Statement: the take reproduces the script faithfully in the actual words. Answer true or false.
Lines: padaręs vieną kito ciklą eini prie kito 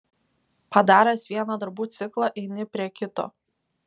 false